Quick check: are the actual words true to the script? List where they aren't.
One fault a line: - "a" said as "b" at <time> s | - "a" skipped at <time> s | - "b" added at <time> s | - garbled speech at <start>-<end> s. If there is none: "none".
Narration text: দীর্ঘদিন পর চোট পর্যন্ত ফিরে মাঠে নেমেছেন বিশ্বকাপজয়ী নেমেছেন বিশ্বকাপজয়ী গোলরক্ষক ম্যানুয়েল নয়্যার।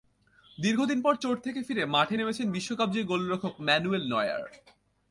- "পর্যন্ত" said as "থেকে" at 1.4 s
- "নেমেছেন বিশ্বকাপজয়ী" skipped at 3.0 s